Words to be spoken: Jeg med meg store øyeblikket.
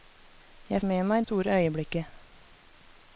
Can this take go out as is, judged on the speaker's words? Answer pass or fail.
pass